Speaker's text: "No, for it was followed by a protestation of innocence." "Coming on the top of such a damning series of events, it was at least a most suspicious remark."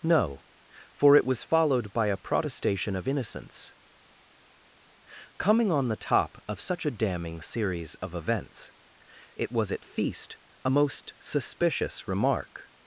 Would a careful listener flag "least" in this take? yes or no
yes